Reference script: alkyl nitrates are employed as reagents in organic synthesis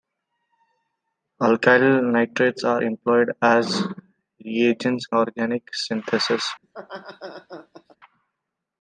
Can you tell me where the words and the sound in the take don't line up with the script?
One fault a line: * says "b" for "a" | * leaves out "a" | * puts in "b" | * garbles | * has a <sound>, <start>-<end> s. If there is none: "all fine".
* leaves out "in"
* has a laugh, 6.6-8.0 s